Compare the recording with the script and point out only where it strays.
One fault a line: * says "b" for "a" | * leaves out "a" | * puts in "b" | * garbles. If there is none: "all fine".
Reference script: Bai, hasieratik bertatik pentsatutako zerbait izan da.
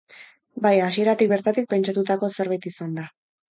all fine